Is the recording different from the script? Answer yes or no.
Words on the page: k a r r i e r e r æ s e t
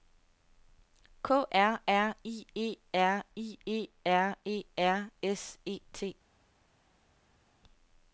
yes